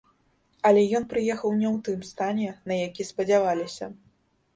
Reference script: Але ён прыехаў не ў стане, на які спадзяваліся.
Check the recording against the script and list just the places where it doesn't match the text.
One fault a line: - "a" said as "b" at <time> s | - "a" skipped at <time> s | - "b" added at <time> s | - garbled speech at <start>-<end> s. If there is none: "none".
- "тым" added at 1.9 s